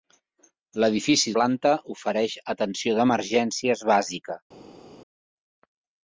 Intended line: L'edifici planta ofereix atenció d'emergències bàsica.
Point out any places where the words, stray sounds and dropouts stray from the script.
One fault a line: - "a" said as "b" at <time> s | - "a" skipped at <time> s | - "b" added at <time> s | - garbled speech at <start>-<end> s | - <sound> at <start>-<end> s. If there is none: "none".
none